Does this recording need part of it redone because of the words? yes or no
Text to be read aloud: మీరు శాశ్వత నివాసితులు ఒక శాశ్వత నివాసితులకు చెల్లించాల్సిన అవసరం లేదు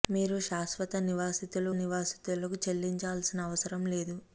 yes